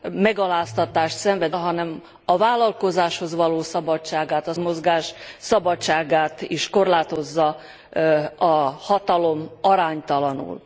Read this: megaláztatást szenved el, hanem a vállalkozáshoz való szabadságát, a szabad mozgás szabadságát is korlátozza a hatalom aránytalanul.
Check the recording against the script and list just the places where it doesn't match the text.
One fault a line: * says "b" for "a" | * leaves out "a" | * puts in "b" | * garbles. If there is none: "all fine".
* leaves out "el"
* leaves out "szabad"